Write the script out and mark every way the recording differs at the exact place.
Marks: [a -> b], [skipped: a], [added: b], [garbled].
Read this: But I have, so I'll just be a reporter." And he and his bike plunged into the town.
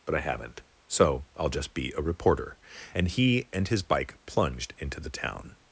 But I [have, -> haven't] so I'll just be a reporter." And he and his bike plunged into the town.